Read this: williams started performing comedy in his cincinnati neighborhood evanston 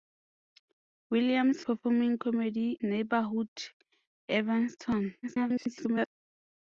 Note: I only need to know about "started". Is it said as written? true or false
false